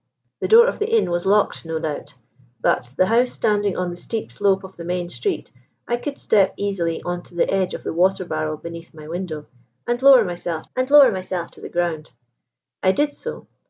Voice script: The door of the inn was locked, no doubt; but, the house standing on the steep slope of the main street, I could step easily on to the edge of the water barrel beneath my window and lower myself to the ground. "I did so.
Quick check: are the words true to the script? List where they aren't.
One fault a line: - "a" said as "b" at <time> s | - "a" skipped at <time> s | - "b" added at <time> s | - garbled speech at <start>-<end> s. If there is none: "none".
- "and lower myself" added at 10.7 s